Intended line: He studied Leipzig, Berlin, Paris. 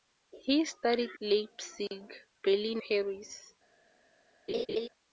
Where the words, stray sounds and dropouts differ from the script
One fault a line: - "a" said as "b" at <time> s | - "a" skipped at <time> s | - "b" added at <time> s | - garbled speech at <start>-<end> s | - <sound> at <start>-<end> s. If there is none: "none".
- laugh at 4.5-4.9 s